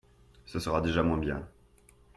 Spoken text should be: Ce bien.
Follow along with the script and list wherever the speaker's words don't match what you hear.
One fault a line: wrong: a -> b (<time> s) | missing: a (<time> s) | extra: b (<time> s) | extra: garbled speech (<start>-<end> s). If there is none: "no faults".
extra: sera déjà moins (0.6 s)